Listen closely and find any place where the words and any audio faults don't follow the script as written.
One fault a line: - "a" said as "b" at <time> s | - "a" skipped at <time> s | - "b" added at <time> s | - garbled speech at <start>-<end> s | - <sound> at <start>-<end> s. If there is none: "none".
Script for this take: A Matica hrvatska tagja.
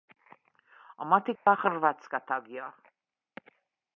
- dropout at 1.4-1.5 s